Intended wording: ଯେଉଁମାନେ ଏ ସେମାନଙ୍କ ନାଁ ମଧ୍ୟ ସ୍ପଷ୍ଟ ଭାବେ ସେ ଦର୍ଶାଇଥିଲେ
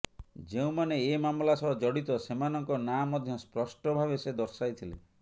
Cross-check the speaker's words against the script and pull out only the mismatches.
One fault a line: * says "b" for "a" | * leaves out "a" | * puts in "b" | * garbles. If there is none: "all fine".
* puts in "ମାମଲା ସହ ଜଡ଼ିତ"